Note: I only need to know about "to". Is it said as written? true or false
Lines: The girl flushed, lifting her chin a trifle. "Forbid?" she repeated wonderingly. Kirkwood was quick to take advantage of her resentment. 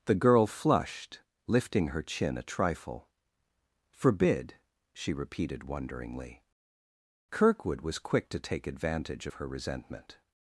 true